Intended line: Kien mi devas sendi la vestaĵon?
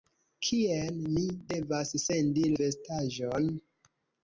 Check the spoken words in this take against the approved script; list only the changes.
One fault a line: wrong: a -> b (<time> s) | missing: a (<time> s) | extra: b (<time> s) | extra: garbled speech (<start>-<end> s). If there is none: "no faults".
missing: la (2.5 s)